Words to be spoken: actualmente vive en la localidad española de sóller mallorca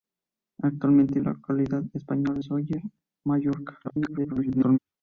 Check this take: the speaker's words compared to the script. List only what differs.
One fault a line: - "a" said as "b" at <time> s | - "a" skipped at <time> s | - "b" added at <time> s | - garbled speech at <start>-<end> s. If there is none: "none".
- "vive" skipped at 1.2 s
- "de" skipped at 2.4 s
- garbled speech at 3.8-4.8 s